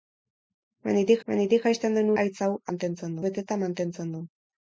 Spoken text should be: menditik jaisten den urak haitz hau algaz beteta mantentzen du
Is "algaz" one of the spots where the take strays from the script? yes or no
yes